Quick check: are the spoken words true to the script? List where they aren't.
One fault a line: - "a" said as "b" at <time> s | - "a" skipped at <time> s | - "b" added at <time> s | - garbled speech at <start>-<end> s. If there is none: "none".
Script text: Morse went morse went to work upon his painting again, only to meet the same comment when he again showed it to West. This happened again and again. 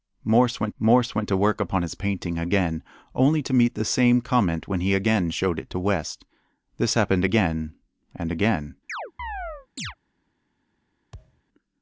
none